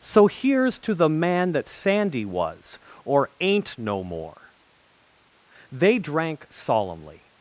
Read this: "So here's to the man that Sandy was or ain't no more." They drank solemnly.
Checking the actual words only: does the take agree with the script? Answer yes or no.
yes